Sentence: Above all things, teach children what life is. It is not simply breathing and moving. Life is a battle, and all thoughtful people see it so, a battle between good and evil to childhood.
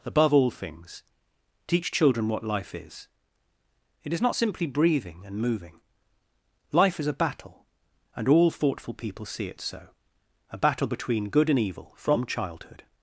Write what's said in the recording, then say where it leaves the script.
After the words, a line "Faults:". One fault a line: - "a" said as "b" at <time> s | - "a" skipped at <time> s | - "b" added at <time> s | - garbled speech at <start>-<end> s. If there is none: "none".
Above all things, teach children what life is. It is not simply breathing and moving. Life is a battle, and all thoughtful people see it so, a battle between good and evil from childhood.
Faults:
- "to" said as "from" at 12.0 s